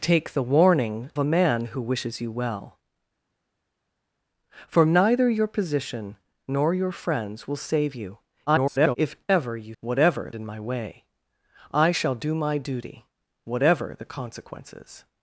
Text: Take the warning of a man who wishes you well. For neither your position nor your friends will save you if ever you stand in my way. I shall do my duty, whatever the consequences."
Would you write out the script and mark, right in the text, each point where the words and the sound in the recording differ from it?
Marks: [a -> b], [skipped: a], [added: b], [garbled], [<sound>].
Take the warning [skipped: of] a man who wishes you well. For neither your position nor your friends will save you [garbled] if ever you [stand -> whatever] in my way. I shall do my duty, whatever the consequences."